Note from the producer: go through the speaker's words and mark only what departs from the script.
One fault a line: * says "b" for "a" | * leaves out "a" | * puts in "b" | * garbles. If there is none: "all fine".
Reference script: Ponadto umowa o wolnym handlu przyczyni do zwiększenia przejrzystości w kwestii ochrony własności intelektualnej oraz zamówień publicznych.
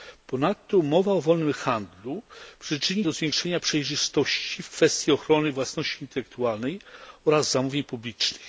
all fine